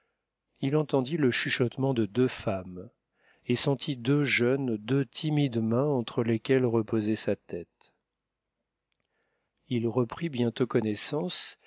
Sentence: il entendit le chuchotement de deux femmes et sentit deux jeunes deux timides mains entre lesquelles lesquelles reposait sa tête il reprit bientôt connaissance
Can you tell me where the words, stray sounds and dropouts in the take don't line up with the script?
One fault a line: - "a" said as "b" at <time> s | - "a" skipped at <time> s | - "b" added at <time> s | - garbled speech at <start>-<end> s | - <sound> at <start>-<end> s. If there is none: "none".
- "lesquelles" skipped at 6.7 s